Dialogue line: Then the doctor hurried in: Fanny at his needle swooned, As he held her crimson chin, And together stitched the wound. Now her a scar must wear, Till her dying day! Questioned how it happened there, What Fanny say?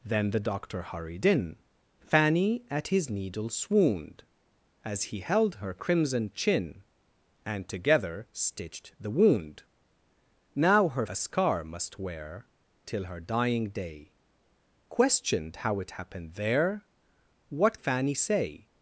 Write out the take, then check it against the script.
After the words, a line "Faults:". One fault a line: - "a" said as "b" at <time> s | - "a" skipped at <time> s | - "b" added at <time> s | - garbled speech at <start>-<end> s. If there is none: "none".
Then the doctor hurried in: Fanny at his needle swooned, As he held her crimson chin, And together stitched the wound. Now her a scar must wear, Till her dying day! Questioned how it happened there, What Fanny say?
Faults:
none